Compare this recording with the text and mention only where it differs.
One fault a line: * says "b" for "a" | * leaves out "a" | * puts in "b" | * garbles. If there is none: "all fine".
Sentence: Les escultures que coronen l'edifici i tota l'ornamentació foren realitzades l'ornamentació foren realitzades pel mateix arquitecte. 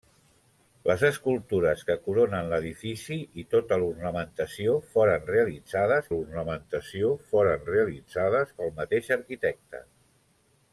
all fine